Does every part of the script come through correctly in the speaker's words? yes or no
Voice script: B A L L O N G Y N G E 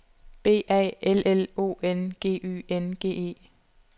yes